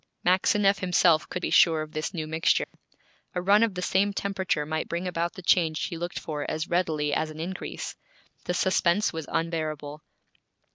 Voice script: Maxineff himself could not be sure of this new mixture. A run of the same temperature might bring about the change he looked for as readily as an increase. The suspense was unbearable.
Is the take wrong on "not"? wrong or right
wrong